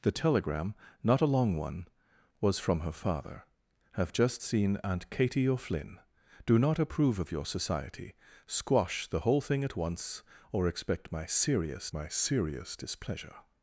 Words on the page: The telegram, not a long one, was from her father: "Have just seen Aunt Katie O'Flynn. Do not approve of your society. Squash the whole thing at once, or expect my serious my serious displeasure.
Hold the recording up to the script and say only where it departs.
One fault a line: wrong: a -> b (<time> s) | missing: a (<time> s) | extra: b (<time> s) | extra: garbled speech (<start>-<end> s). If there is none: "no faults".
no faults